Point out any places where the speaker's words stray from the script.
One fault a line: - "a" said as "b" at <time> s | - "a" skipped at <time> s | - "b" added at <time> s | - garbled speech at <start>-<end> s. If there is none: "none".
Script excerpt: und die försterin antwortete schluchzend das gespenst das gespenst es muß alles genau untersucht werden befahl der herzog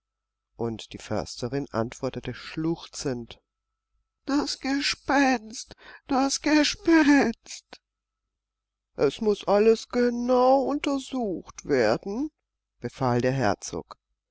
none